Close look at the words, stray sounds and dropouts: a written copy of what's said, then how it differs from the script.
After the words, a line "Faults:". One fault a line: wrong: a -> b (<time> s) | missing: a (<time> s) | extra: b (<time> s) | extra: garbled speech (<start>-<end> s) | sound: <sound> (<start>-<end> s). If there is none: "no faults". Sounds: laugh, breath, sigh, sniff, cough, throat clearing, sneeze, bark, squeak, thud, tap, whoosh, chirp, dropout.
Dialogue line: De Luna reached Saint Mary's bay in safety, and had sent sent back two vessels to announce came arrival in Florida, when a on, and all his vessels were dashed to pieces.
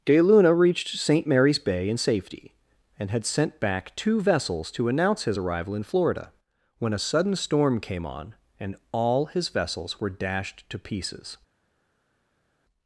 De Luna reached Saint Mary's bay in safety, and had sent back two vessels to announce his arrival in Florida, when a sudden storm came on, and all his vessels were dashed to pieces.
Faults:
missing: sent (3.6 s)
wrong: came -> his (5.2 s)
extra: sudden storm came (7.0 s)